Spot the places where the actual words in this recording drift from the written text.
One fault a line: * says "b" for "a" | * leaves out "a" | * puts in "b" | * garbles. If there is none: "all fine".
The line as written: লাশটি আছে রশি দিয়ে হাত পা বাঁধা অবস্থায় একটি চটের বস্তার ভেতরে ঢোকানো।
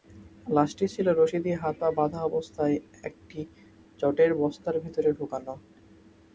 * says "ছিল" for "আছে"